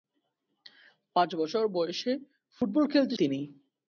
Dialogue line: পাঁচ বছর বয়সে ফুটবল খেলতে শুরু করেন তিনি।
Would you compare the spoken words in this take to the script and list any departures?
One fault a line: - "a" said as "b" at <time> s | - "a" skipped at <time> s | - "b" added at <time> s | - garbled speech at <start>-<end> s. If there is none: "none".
- "শুরু করেন" skipped at 3.1 s